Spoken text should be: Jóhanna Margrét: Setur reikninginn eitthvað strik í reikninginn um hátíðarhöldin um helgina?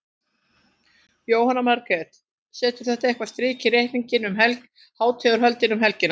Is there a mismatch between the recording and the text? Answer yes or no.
yes